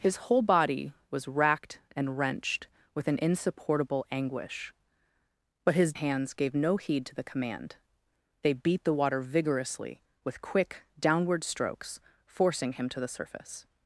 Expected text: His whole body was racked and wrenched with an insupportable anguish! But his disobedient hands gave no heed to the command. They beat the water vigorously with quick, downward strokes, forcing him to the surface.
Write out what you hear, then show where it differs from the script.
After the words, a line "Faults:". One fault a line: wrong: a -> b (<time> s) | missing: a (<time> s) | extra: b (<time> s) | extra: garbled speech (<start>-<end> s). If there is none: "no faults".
His whole body was racked and wrenched with an insupportable anguish! But his hands gave no heed to the command. They beat the water vigorously with quick, downward strokes, forcing him to the surface.
Faults:
missing: disobedient (5.9 s)